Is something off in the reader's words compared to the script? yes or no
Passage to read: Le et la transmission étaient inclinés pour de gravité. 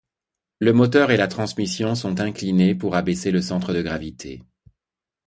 yes